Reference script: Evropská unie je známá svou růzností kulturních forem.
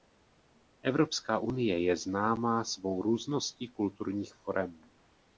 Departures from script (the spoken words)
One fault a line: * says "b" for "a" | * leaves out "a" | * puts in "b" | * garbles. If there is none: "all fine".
all fine